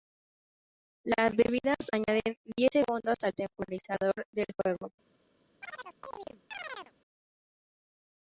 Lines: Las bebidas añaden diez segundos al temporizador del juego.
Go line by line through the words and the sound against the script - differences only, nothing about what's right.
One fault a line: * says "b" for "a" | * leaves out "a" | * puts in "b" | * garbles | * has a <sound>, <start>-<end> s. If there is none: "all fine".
* has a chirp, 5.6-6.9 s